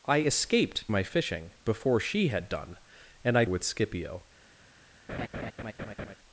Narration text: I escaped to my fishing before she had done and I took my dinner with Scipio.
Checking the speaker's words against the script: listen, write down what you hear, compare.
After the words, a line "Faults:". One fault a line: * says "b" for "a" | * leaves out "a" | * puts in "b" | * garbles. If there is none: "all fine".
I escaped my fishing before she had done and I with Scipio.
Faults:
* leaves out "to"
* leaves out "took my dinner"